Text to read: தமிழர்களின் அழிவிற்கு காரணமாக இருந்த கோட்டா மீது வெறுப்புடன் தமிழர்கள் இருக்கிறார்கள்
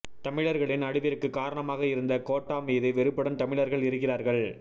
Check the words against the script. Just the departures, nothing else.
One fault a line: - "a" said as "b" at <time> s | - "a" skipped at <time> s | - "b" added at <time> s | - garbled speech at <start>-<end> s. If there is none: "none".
none